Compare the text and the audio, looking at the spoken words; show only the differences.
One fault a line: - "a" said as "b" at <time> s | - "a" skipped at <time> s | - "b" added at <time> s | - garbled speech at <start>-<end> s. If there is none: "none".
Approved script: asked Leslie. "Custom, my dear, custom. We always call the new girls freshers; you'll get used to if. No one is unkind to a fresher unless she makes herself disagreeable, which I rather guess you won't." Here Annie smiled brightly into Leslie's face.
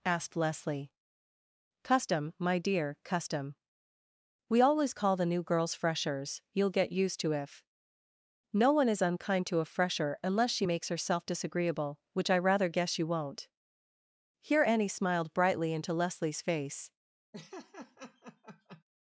none